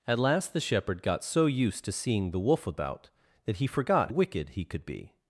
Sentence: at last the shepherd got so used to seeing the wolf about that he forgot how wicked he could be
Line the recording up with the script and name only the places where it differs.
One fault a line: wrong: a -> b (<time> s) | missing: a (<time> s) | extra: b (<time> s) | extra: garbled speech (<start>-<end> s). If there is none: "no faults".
missing: how (4.1 s)